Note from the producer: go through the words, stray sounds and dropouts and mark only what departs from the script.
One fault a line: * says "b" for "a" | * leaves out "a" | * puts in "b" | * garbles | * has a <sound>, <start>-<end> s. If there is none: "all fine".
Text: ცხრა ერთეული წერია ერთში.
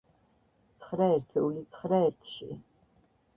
* says "ცხრა" for "წერია"